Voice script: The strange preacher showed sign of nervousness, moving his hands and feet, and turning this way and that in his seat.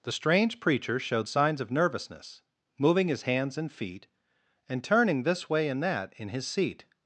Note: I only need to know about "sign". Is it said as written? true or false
false